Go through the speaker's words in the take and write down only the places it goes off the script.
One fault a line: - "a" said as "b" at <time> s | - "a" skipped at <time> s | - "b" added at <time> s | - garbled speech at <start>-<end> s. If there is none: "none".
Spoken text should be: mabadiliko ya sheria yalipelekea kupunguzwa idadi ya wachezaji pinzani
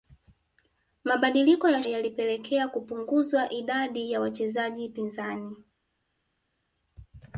- "sheria" skipped at 1.8 s